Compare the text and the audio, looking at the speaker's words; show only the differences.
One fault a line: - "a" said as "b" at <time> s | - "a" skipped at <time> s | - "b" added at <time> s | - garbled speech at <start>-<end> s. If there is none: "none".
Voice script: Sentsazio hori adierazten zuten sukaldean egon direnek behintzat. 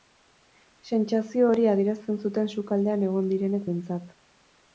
none